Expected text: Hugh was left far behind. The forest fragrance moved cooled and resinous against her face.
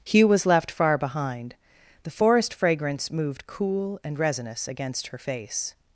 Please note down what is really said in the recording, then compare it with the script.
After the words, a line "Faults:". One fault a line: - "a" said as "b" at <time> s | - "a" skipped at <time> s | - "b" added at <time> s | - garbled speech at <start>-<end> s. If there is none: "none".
Hugh was left far behind. The forest fragrance moved cool and resinous against her face.
Faults:
- "cooled" said as "cool" at 3.5 s